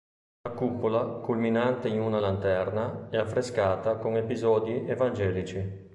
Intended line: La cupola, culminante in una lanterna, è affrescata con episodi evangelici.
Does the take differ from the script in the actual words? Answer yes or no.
no